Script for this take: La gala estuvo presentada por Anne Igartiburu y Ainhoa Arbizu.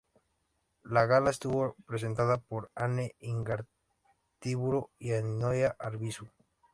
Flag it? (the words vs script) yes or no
no